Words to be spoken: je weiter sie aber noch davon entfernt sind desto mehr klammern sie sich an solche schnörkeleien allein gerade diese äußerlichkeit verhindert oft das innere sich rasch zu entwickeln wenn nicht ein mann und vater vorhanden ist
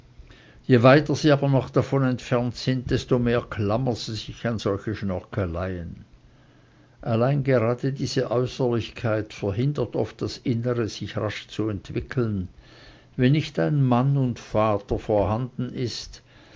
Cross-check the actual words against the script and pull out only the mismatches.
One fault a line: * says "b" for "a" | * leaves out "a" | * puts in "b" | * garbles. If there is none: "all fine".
all fine